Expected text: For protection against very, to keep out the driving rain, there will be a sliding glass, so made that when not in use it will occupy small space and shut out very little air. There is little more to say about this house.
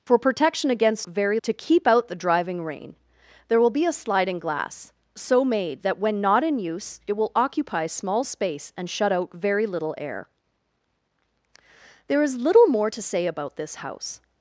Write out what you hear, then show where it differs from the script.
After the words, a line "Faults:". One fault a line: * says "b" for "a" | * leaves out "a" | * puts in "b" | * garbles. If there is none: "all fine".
For protection against very, to keep out the driving rain, there will be a sliding glass, so made that when not in use it will occupy small space and shut out very little air. There is little more to say about this house.
Faults:
all fine